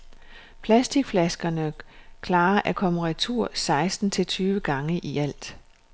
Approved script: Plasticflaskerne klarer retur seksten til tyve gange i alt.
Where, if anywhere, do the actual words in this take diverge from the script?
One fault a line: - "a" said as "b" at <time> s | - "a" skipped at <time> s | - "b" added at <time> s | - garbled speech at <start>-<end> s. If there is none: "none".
- "at komme" added at 2.6 s